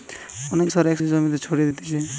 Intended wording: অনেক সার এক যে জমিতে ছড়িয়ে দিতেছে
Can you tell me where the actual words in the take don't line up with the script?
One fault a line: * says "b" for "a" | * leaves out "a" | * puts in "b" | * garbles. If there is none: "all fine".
all fine